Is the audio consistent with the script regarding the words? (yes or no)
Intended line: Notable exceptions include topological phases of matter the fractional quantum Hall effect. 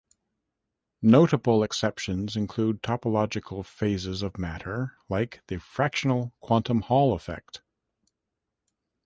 no